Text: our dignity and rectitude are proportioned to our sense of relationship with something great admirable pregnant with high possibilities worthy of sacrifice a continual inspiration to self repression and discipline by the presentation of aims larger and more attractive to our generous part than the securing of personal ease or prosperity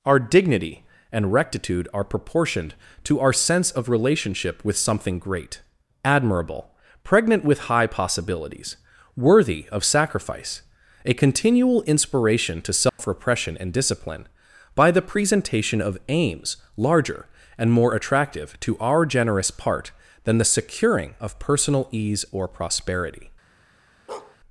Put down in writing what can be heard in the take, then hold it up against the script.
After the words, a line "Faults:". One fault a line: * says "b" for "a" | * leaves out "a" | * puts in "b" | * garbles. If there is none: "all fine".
our dignity and rectitude are proportioned to our sense of relationship with something great admirable pregnant with high possibilities worthy of sacrifice a continual inspiration to self repression and discipline by the presentation of aims larger and more attractive to our generous part than the securing of personal ease or prosperity
Faults:
all fine